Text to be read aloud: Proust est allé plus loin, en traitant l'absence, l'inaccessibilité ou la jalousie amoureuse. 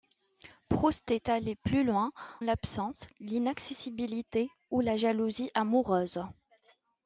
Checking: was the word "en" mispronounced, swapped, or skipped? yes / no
yes